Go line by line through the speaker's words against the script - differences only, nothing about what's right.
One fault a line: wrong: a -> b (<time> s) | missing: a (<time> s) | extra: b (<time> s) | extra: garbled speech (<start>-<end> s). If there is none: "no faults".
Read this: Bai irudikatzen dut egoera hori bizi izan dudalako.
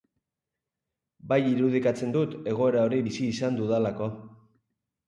no faults